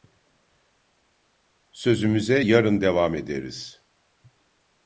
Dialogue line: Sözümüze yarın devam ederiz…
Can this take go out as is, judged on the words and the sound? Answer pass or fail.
pass